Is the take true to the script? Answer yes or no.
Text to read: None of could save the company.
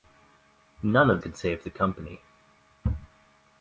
yes